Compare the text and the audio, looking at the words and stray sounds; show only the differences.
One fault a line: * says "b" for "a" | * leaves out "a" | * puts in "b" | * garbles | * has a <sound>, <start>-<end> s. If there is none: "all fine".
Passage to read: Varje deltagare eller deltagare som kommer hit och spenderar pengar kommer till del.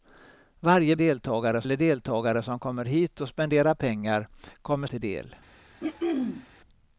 * has a throat clearing, 5.8-6.5 s